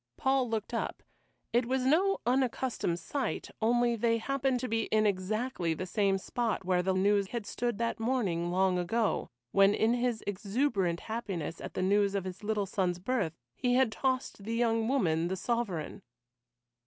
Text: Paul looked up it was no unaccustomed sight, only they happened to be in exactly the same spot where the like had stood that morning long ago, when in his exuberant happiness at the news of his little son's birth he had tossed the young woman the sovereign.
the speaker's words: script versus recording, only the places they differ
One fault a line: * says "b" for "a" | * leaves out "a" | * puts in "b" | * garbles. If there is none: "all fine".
* says "news" for "like"